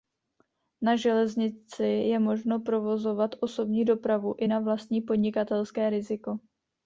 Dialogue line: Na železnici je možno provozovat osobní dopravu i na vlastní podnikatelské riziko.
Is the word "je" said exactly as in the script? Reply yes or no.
yes